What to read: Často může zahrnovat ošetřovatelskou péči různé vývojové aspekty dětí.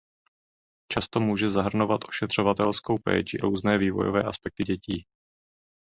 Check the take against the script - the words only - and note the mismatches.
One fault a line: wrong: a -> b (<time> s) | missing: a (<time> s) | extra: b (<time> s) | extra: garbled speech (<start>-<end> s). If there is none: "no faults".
no faults